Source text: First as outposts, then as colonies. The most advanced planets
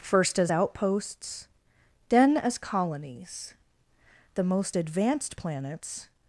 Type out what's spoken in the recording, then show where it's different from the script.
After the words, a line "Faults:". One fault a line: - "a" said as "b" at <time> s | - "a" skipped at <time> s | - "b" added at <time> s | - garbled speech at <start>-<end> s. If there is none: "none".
First as outposts, then as colonies. The most advanced planets
Faults:
none